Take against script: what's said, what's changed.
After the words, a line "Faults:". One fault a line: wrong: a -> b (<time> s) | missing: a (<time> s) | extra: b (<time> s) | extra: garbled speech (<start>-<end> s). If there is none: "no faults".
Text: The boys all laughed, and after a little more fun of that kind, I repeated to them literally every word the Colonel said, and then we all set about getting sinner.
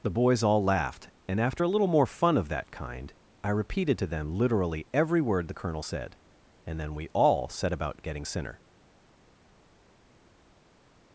The boys all laughed, and after a little more fun of that kind, I repeated to them literally every word the Colonel said, and then we all set about getting sinner.
Faults:
no faults